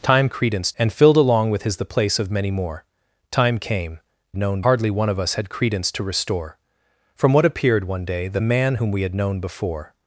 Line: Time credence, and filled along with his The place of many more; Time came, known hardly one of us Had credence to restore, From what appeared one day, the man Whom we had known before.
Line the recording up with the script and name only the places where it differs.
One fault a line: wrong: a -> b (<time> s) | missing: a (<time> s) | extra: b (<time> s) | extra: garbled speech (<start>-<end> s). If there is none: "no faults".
no faults